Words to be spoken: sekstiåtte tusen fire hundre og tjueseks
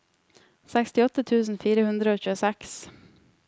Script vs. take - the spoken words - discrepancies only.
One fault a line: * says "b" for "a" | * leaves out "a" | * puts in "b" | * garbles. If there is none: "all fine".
all fine